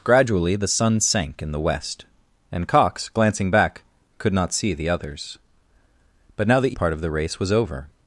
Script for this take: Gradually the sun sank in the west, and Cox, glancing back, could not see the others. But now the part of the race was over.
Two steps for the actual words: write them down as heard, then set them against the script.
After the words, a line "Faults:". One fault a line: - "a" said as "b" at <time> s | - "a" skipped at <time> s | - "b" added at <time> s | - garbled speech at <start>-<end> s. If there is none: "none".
Gradually the sun sank in the west, and Cox, glancing back, could not see the others. But now the part of the race was over.
Faults:
none